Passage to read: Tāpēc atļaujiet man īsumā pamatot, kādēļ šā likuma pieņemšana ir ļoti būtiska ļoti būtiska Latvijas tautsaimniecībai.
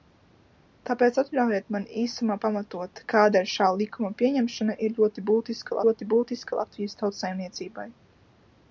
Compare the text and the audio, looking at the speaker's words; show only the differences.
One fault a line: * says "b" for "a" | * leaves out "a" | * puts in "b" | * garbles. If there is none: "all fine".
all fine